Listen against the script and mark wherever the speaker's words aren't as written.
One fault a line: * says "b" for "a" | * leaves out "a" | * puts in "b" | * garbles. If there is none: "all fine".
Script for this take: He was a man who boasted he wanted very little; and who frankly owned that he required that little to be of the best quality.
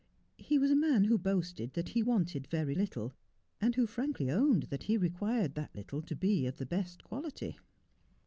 * puts in "that"